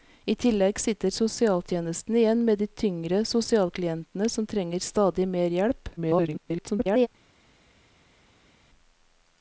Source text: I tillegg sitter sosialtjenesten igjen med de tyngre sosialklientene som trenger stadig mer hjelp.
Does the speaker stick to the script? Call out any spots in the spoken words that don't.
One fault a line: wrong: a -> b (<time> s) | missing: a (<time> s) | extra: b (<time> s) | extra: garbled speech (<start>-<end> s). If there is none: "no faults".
extra: garbled speech (6.0-7.1 s)